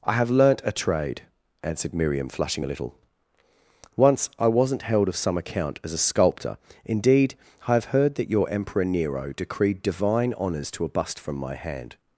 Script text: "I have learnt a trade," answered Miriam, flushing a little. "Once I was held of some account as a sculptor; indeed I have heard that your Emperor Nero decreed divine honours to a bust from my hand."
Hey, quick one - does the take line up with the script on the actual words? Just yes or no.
no